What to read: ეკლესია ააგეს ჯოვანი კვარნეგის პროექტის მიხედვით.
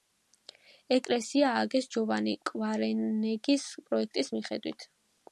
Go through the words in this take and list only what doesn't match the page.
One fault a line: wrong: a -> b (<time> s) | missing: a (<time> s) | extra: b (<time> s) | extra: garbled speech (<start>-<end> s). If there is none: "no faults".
no faults